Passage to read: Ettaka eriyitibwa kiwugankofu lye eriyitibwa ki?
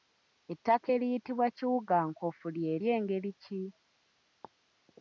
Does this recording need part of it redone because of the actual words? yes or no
yes